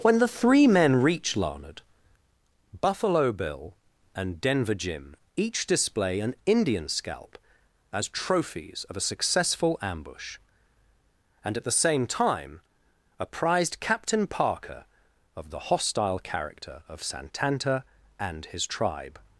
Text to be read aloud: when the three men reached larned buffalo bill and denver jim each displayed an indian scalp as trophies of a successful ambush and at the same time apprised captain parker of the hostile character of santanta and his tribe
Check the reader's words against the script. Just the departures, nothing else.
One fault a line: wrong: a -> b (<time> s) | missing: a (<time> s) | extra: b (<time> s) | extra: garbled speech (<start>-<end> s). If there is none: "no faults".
wrong: reached -> reach (1.0 s)
wrong: displayed -> display (5.7 s)